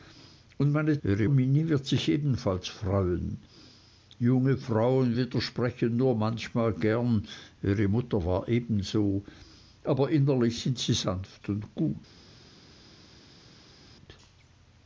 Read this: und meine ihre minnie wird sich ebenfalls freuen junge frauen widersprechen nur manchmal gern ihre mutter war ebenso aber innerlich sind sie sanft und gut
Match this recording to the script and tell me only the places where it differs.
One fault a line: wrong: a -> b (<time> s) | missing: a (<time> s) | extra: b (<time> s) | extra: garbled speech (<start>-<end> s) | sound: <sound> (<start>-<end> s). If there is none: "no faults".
no faults